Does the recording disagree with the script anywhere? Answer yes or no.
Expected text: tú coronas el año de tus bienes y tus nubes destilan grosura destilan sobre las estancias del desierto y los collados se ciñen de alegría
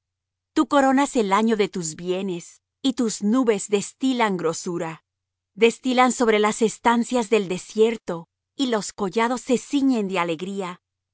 no